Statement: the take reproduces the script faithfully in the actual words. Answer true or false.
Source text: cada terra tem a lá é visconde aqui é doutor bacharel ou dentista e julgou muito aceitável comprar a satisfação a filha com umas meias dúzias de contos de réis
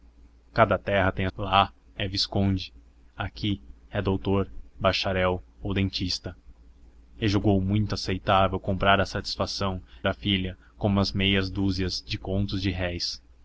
true